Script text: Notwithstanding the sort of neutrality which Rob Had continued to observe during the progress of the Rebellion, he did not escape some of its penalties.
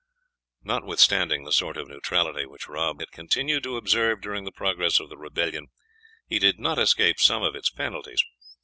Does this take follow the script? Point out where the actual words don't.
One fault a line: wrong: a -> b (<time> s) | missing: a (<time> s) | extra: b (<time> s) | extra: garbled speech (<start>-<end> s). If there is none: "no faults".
no faults